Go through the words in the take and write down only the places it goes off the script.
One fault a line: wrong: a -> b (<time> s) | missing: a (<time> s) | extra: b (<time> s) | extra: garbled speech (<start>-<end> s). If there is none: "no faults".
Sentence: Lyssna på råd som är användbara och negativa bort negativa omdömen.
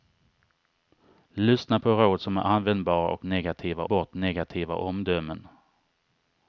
no faults